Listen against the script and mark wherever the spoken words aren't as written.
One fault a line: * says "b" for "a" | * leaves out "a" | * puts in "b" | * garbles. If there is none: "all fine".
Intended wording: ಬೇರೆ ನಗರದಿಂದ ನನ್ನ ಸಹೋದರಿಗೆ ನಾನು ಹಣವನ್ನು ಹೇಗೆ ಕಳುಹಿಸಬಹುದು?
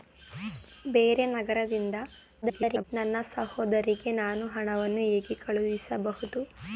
* garbles